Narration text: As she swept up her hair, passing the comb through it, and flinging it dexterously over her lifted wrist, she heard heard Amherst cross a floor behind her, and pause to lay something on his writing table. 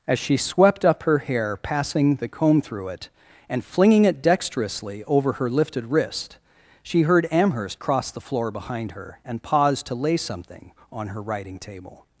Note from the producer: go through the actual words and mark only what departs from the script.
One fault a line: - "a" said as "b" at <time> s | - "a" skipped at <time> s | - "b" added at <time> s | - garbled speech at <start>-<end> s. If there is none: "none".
- "heard" skipped at 7.3 s
- "a" said as "the" at 8.1 s
- "his" said as "her" at 11.1 s